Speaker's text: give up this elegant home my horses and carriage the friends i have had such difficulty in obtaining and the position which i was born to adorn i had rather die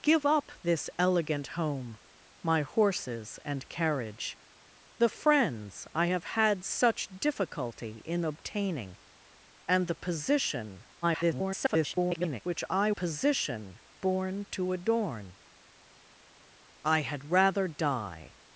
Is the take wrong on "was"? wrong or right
wrong